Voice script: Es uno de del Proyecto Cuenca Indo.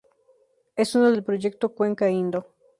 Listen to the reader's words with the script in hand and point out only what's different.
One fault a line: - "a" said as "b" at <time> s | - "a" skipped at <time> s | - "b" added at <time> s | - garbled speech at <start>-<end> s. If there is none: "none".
none